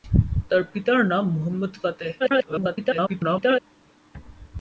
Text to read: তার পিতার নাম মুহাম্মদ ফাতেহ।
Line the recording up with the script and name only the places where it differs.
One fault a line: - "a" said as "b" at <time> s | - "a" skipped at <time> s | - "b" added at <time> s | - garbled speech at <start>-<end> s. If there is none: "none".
- garbled speech at 2.2-3.6 s